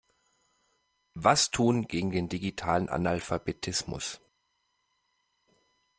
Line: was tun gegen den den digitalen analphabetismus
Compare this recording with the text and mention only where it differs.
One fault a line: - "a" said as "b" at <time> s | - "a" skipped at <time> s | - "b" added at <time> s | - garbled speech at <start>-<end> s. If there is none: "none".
- "den" skipped at 2.3 s